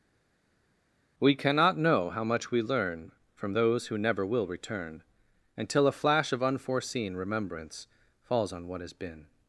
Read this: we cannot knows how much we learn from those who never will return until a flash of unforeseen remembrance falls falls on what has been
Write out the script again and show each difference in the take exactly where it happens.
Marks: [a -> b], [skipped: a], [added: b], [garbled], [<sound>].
we cannot [knows -> know] how much we learn from those who never will return until a flash of unforeseen remembrance falls [skipped: falls] on what has been